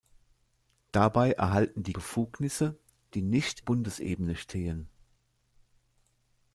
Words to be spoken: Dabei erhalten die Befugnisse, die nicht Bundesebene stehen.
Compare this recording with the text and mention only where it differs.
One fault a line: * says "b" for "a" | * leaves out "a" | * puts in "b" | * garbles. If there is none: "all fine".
all fine